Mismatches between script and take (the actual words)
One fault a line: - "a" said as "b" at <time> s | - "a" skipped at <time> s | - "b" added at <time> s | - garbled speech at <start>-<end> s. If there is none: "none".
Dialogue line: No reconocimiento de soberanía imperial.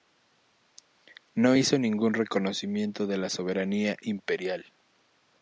- "hizo ningún" added at 1.5 s
- "la" added at 3.2 s